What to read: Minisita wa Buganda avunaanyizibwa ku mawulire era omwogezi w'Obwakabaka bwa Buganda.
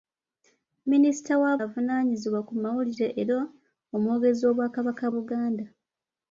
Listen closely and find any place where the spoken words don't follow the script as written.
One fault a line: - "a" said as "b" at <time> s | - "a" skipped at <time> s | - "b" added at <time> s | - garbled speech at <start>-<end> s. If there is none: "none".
- "Buganda" skipped at 1.5 s
- "bwa" skipped at 5.0 s